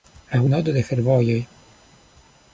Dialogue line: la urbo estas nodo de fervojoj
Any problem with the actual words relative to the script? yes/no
yes